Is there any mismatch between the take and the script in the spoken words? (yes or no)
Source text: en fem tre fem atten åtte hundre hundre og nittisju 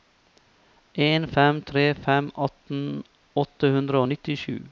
yes